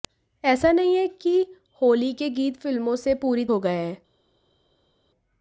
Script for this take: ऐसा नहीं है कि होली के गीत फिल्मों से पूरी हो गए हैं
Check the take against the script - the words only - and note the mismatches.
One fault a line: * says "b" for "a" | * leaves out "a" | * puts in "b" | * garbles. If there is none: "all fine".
all fine